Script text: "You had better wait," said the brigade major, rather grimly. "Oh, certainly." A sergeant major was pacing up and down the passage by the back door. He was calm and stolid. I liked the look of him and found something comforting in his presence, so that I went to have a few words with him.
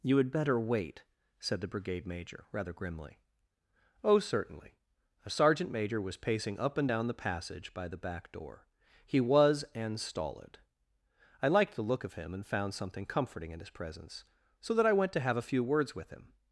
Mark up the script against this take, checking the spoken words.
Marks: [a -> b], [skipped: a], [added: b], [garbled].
"You had better wait," said the brigade major, rather grimly. "Oh, certainly." A sergeant major was pacing up and down the passage by the back door. He was [skipped: calm] and stolid. I liked the look of him and found something comforting in his presence, so that I went to have a few words with him.